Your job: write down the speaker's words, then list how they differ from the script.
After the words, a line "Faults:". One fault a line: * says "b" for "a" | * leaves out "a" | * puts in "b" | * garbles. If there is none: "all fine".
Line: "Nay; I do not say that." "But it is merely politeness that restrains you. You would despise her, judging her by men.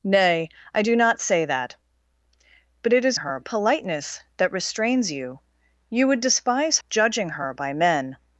"Nay; I do not say that." "But it is her politeness that restrains you. You would despise judging her by men.
Faults:
* says "her" for "merely"
* leaves out "her"